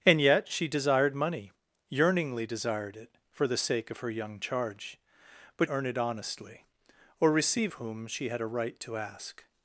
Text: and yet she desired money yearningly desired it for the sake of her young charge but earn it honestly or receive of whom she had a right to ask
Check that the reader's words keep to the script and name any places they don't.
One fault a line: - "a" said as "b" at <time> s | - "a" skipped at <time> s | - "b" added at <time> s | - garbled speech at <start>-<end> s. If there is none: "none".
none